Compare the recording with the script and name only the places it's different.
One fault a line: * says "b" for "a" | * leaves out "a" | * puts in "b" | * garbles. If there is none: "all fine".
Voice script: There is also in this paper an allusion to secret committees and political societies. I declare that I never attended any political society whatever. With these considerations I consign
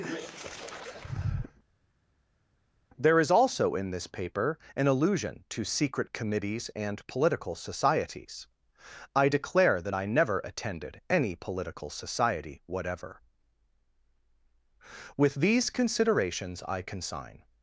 all fine